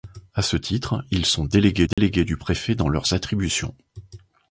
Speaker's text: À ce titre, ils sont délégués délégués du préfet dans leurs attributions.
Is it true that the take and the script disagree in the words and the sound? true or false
true